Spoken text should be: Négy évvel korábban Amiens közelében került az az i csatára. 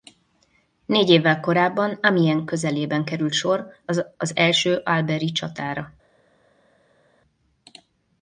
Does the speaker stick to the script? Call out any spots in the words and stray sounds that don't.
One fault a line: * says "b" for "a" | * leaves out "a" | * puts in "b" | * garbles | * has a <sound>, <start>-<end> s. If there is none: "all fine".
* puts in "sor"
* puts in "első albert"